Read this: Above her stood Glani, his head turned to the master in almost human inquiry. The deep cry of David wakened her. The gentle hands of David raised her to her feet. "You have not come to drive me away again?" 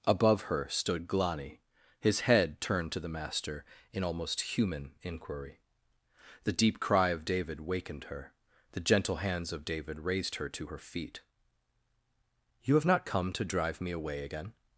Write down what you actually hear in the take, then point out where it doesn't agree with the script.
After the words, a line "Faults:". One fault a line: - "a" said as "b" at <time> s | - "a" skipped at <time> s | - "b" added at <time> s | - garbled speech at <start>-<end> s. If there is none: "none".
Above her stood Glani, his head turned to the master in almost human inquiry. The deep cry of David wakened her. The gentle hands of David raised her to her feet. "You have not come to drive me away again?"
Faults:
none